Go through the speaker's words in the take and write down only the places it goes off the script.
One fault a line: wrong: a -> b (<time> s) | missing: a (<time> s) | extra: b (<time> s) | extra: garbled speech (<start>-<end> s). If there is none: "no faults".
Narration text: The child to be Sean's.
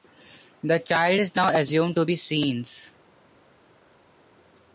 extra: is now assumed (1.2 s)